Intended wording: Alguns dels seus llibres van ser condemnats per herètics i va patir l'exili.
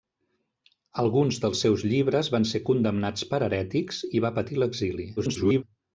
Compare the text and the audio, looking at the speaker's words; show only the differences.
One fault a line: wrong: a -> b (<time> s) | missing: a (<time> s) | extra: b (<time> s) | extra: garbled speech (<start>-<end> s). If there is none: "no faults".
extra: garbled speech (5.2-5.6 s)